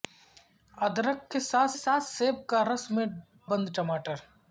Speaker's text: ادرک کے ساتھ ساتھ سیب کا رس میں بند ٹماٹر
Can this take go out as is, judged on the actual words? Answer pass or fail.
pass